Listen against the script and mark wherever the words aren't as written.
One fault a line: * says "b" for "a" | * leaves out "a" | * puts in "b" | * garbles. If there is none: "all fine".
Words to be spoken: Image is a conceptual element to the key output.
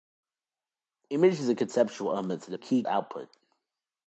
all fine